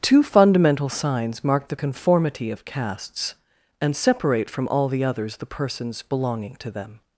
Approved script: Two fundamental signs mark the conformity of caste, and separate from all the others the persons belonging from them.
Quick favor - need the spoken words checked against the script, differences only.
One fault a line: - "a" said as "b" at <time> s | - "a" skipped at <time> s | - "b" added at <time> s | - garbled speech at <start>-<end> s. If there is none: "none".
- "caste" said as "castes" at 2.6 s
- "from" said as "to" at 6.6 s